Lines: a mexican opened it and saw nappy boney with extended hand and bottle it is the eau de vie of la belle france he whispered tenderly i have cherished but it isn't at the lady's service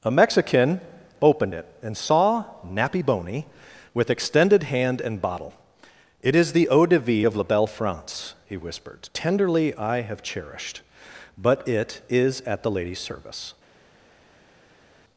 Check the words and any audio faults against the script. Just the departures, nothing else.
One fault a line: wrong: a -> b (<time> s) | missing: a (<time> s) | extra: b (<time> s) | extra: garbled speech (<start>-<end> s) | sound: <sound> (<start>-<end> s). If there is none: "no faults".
wrong: isn't -> is (12.1 s)